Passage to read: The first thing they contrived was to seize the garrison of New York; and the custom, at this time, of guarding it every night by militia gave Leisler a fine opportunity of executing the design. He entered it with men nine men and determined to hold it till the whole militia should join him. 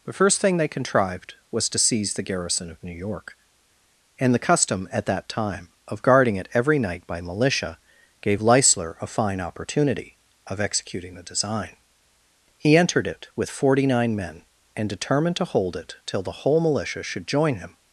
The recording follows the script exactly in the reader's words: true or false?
false